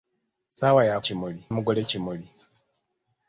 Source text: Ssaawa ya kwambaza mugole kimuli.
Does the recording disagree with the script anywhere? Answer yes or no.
yes